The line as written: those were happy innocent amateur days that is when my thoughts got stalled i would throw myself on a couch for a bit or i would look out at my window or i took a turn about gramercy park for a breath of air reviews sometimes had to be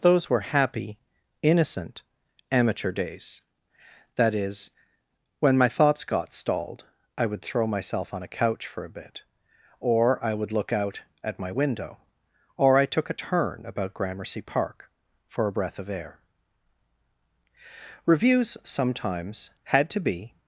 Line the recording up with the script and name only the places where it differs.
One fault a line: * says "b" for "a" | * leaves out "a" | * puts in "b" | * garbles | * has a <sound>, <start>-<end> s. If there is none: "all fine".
all fine